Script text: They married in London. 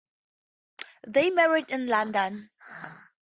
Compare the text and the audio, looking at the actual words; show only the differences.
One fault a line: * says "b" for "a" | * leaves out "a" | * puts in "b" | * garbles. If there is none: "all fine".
all fine